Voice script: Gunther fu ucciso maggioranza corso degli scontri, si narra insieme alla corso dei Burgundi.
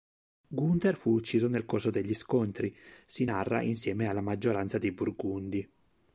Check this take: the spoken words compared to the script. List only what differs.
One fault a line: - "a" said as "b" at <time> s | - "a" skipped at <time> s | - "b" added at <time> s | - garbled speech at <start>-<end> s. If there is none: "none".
- "maggioranza" said as "nel" at 1.5 s
- "corso" said as "maggioranza" at 4.2 s